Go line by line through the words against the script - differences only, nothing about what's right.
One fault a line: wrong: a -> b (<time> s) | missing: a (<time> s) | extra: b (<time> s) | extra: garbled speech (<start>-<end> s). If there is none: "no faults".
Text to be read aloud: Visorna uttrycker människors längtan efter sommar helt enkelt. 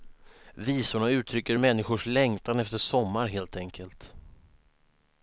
no faults